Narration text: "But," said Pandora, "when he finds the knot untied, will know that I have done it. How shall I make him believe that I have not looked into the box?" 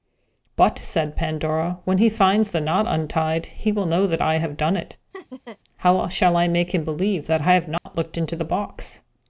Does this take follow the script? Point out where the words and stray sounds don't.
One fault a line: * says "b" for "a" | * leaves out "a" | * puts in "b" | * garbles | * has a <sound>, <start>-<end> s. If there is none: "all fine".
* puts in "he"
* has a laugh, 5.1-5.6 s
* has a dropout, 7.8-7.9 s